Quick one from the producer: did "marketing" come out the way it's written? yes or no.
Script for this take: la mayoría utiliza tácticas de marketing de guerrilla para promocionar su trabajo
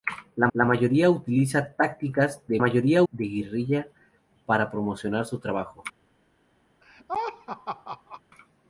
no